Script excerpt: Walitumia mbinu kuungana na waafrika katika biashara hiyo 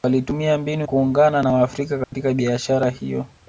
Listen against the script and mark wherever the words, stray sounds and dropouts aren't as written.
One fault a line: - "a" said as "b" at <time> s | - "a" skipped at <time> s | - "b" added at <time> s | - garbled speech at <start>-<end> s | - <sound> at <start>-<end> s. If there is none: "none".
- dropout at 2.0-2.1 s